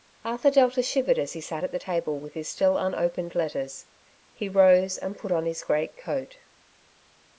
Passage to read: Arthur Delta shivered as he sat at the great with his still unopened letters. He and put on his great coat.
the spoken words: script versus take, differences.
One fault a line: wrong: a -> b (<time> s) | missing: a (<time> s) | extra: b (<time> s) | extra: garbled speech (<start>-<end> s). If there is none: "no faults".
wrong: great -> table (1.7 s)
extra: rose (4.5 s)